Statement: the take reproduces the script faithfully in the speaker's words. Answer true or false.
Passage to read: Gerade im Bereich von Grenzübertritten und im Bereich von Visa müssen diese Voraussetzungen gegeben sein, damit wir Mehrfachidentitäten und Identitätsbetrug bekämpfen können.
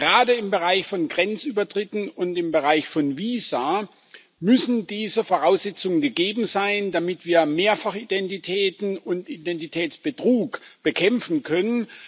true